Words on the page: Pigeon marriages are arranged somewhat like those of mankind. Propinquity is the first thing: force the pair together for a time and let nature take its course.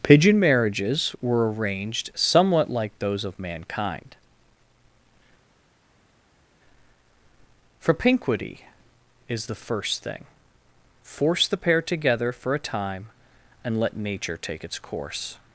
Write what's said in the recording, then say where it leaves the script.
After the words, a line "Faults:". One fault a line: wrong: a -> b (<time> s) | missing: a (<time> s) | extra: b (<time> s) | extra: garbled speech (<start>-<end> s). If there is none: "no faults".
Pigeon marriages were arranged somewhat like those of mankind. Propinquity is the first thing: force the pair together for a time and let nature take its course.
Faults:
wrong: are -> were (1.2 s)